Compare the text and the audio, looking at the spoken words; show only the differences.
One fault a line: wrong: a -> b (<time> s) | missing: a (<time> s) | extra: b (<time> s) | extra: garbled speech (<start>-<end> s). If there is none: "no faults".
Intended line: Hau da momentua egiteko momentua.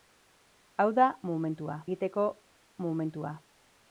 no faults